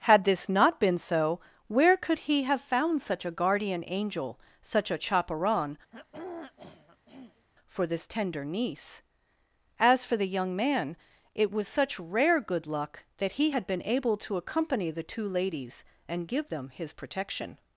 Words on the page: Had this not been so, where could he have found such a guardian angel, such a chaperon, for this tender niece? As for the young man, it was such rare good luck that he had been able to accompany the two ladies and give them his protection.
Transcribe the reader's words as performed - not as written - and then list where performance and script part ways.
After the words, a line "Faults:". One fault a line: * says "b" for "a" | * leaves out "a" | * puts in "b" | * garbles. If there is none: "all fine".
Had this not been so, where could he have found such a guardian angel, such a chaperon, for this tender niece? As for the young man, it was such rare good luck that he had been able to accompany the two ladies and give them his protection.
Faults:
all fine